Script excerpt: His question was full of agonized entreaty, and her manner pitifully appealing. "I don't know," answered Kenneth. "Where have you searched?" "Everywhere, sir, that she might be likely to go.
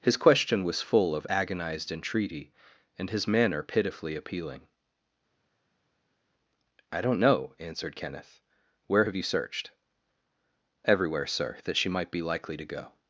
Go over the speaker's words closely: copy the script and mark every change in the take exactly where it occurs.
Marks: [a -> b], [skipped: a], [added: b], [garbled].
His question was full of agonized entreaty, and [her -> his] manner pitifully appealing. "I don't know," answered Kenneth. "Where have you searched?" "Everywhere, sir, that she might be likely to go.